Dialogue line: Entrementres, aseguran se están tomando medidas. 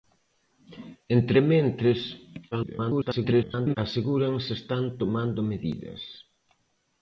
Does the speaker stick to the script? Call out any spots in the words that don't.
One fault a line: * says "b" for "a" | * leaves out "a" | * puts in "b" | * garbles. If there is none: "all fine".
* garbles